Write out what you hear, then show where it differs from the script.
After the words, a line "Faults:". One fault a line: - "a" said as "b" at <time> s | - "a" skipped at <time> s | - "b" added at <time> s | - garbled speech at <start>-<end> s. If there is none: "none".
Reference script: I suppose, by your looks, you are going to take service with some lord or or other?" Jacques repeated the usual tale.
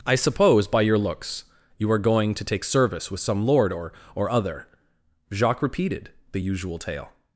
I suppose, by your looks, you are going to take service with some lord or or other?" Jacques repeated the usual tale.
Faults:
none